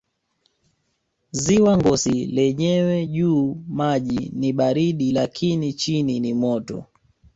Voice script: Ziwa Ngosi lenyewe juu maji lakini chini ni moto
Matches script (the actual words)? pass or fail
fail